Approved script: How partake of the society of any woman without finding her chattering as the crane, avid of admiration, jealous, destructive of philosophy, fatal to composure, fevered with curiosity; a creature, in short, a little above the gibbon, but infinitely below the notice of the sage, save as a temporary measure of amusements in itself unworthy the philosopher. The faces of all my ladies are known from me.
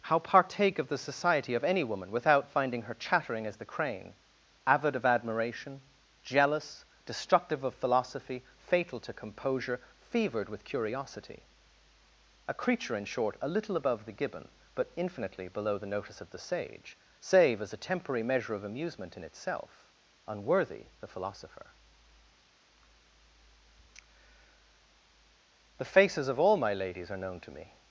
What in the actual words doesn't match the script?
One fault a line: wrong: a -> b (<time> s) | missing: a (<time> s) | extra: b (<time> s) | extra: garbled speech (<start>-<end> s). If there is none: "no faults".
wrong: amusements -> amusement (18.6 s)
wrong: from -> to (27.4 s)